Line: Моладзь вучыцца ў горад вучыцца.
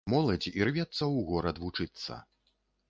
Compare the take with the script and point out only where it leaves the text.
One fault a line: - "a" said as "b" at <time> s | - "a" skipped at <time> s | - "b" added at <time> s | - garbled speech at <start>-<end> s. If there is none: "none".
- "вучыцца" said as "ірвецца" at 0.6 s